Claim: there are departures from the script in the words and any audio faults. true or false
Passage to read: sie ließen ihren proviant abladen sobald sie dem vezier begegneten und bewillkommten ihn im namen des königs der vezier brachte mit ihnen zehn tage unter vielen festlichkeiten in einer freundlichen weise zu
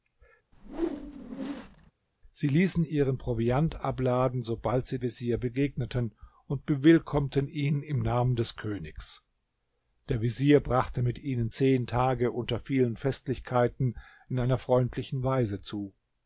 true